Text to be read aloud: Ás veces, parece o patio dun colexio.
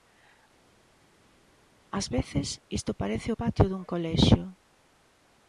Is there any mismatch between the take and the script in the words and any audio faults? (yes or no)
yes